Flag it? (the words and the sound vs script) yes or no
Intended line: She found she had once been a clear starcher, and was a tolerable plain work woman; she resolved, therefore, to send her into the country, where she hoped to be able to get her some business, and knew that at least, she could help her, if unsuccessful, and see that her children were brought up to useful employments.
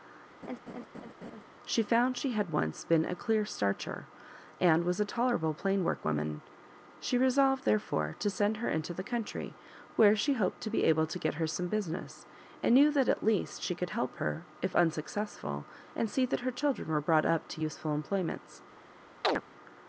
yes